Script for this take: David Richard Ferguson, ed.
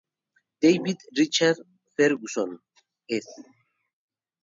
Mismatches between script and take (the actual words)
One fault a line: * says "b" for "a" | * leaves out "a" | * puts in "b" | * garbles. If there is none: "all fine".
all fine